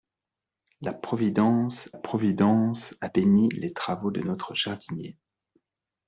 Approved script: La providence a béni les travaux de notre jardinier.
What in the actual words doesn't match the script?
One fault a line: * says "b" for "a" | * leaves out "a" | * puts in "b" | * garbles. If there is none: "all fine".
* puts in "providence"